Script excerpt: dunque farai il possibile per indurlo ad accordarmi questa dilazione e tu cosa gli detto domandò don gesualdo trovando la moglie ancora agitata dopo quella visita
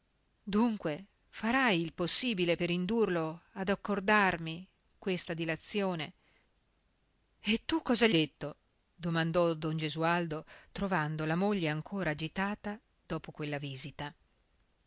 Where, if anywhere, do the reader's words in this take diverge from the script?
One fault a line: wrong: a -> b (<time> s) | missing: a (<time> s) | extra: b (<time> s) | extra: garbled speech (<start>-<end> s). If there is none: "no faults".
no faults